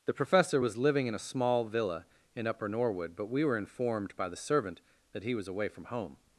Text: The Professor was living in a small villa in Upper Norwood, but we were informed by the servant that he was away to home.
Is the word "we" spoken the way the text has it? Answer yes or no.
yes